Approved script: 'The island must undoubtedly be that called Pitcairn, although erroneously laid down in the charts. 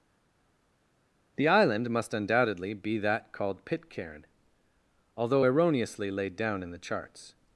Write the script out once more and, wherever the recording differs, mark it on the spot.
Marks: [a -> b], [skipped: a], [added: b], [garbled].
'The island must undoubtedly be that called Pitcairn, although erroneously laid down in the charts.